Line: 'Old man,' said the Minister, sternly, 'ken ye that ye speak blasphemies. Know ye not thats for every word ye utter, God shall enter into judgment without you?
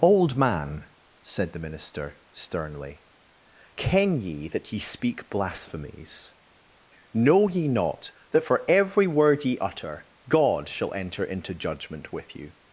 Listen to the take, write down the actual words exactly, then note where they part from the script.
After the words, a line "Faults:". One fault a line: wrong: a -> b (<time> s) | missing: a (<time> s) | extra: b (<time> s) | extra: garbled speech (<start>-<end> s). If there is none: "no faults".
'Old man,' said the Minister, sternly, 'ken ye that ye speak blasphemies. Know ye not that for every word ye utter, God shall enter into judgment with you?
Faults:
wrong: thats -> that (8.3 s)
wrong: without -> with (12.1 s)